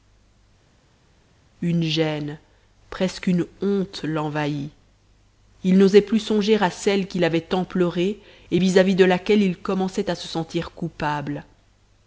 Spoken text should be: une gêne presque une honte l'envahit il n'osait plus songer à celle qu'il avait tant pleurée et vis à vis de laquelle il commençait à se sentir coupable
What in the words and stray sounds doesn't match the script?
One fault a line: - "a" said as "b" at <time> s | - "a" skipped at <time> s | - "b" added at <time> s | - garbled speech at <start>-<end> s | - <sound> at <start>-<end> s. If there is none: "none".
none